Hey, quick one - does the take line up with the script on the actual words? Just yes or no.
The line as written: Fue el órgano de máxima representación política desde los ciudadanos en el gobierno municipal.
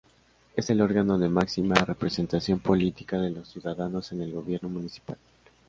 no